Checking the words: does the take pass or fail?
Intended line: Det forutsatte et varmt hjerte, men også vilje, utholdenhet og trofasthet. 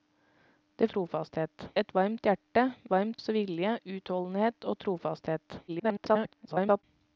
fail